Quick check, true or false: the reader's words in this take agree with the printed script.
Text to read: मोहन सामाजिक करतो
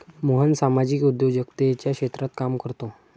false